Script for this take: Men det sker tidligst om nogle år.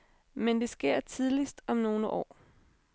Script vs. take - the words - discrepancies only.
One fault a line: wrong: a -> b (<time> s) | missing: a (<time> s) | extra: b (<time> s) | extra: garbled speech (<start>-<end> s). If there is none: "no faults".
no faults